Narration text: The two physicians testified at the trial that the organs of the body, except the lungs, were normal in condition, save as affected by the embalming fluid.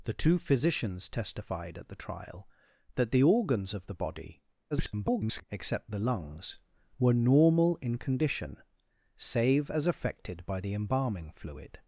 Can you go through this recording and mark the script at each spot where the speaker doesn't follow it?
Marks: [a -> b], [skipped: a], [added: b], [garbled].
The two physicians testified at the trial that the organs of the body, [garbled] except the lungs, were normal in condition, save as affected by the embalming fluid.